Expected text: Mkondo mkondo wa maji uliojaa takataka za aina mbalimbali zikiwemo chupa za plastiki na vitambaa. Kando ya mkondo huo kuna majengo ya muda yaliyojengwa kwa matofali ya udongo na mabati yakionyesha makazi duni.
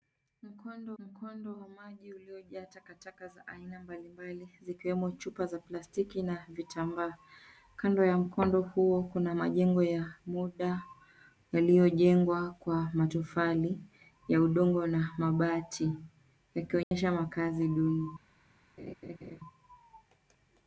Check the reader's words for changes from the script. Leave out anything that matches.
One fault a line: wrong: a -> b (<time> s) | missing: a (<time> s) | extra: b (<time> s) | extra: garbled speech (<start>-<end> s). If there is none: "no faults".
no faults